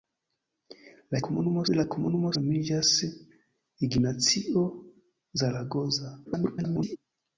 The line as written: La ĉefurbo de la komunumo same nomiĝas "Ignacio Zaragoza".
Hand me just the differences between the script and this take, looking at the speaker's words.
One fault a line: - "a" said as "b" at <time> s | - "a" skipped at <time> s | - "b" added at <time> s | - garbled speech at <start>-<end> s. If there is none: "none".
- "ĉefurbo" said as "komunumo" at 1.3 s
- "same" skipped at 2.3 s
- garbled speech at 6.2-7.0 s